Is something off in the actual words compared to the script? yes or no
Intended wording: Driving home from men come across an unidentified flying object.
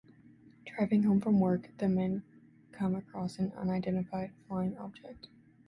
yes